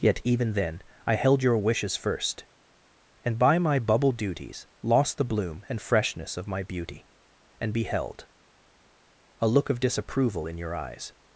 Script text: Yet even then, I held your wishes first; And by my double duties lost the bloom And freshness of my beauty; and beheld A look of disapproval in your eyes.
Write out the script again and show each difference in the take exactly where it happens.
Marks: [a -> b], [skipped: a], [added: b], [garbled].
Yet even then, I held your wishes first; And by my [double -> bubble] duties lost the bloom And freshness of my beauty; and beheld A look of disapproval in your eyes.